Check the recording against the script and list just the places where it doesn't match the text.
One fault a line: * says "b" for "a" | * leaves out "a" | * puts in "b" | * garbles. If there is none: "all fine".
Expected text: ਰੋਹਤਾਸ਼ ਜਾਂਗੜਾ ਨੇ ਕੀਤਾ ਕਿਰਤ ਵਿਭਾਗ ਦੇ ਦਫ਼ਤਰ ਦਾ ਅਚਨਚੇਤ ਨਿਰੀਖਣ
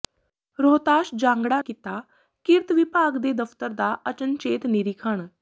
* leaves out "ਨੇ"